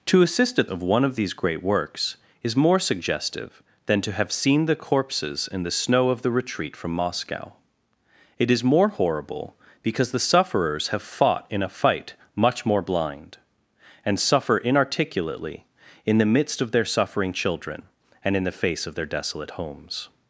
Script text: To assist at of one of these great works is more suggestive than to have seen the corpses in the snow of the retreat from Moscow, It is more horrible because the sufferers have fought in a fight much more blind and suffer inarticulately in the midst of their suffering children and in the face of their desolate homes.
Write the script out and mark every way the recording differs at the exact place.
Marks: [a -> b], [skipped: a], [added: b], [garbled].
To assist at of one of these great works is more suggestive than to have seen the corpses in the snow of the retreat from Moscow, It is more horrible because the sufferers have fought in a fight much more blind and suffer inarticulately in the midst of their suffering children and in the face of their desolate homes.